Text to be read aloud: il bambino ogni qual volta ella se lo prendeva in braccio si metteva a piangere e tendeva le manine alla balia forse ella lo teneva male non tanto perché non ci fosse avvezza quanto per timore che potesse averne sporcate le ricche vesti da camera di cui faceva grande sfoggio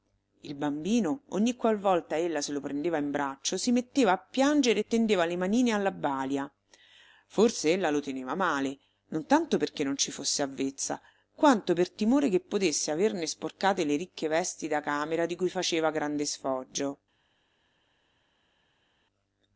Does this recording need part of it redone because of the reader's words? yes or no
no